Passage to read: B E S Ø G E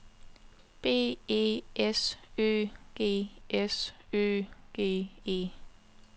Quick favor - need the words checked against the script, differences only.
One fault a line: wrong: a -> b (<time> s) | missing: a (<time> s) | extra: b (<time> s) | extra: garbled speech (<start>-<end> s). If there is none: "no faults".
extra: S Ø G (3.5 s)